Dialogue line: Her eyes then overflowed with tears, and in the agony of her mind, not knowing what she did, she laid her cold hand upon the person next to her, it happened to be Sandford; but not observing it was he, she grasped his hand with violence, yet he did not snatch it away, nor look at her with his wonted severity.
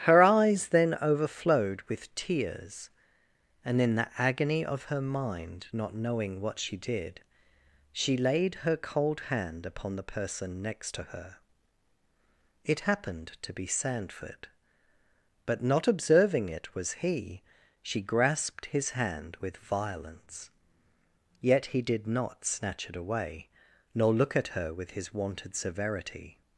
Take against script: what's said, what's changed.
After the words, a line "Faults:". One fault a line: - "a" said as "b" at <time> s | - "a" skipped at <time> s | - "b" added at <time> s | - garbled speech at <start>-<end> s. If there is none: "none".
Her eyes then overflowed with tears, and in the agony of her mind, not knowing what she did, she laid her cold hand upon the person next to her, it happened to be Sandford; but not observing it was he, she grasped his hand with violence, yet he did not snatch it away, nor look at her with his wonted severity.
Faults:
none